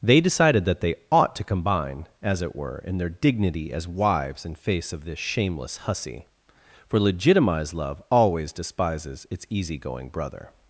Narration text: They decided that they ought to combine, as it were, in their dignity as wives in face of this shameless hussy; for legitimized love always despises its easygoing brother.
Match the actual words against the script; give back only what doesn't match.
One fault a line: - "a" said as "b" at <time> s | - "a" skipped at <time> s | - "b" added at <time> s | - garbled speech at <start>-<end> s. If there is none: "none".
none